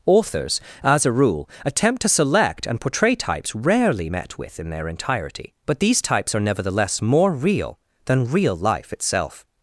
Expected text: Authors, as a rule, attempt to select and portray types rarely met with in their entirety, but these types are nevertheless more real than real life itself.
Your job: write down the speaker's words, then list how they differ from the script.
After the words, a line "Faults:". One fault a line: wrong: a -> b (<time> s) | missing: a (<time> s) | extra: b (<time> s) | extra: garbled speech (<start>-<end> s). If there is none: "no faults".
Authors, as a rule, attempt to select and portray types rarely met with in their entirety, but these types are nevertheless more real than real life itself.
Faults:
no faults